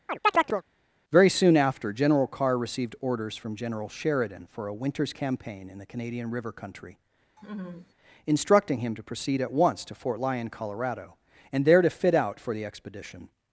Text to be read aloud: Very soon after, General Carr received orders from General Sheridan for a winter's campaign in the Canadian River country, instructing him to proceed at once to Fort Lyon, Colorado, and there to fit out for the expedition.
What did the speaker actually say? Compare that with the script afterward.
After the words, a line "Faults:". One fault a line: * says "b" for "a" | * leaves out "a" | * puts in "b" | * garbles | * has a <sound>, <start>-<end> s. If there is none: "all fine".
Very soon after, General Carr received orders from General Sheridan for a winter's campaign in the Canadian River country, instructing him to proceed at once to Fort Lyon, Colorado, and there to fit out for the expedition.
Faults:
* has a chirp, 0.1-0.6 s
* has a laugh, 7.4-7.9 s